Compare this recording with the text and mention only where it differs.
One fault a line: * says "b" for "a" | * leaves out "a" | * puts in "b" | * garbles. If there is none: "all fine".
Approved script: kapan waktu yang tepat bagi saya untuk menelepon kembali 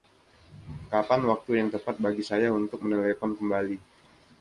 all fine